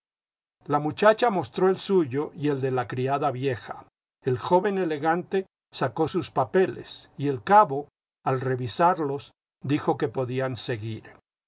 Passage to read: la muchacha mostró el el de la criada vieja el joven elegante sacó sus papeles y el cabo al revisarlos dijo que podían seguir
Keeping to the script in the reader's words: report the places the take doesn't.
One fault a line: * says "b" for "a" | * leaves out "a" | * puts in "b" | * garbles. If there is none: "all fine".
* puts in "suyo y"